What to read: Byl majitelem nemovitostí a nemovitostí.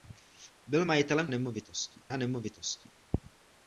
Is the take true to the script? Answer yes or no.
yes